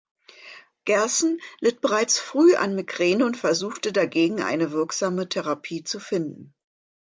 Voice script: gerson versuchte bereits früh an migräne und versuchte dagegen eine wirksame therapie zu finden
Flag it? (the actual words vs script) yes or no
yes